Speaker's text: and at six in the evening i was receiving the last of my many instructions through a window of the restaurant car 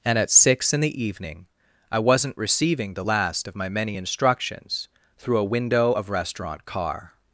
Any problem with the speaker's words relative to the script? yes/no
yes